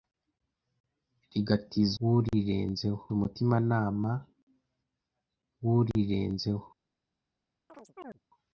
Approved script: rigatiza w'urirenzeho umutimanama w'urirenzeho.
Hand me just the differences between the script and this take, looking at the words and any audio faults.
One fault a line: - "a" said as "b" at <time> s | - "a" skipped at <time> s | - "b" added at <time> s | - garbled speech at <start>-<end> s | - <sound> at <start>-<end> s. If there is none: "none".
- chirp at 7.7-8.2 s